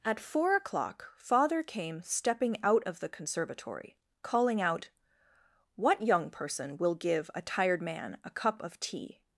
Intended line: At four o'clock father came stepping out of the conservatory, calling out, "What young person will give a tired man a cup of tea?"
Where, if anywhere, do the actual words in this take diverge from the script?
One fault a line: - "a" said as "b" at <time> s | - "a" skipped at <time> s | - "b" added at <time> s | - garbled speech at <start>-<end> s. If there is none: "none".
none